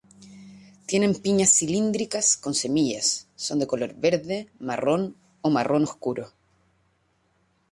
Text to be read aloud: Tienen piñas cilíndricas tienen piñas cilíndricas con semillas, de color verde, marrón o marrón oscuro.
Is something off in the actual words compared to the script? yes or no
yes